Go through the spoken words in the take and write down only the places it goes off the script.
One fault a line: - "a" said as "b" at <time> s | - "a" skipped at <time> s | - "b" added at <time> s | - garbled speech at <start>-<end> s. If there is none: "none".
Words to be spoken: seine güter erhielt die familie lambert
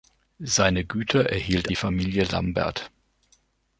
none